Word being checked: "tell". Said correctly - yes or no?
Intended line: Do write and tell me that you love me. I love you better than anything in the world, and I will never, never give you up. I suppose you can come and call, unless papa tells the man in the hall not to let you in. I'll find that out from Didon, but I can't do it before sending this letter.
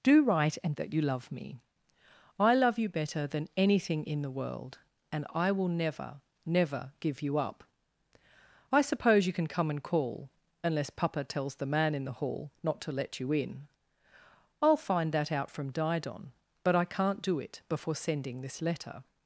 no